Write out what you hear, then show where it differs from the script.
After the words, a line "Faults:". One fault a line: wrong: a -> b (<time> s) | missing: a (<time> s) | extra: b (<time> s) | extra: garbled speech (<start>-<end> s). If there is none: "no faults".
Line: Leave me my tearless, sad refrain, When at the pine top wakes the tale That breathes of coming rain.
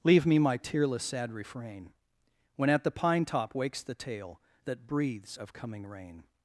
Leave me my tearless, sad refrain, When at the pine top wakes the tale That breathes of coming rain.
Faults:
no faults